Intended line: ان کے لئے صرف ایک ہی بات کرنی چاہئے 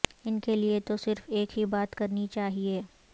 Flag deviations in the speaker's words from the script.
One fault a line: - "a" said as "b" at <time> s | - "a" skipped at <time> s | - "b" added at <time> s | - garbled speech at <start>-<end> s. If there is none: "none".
- "تو" added at 0.8 s